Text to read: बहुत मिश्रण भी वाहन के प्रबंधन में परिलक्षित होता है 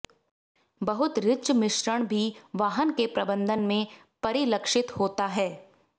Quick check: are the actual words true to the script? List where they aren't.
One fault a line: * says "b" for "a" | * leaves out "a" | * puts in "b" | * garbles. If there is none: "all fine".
* puts in "रिच"